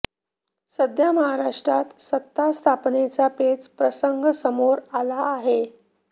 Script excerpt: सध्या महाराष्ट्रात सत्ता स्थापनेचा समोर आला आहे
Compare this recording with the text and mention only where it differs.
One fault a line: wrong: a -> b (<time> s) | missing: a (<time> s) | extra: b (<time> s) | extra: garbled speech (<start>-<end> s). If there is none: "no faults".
extra: पेच प्रसंग (3.4 s)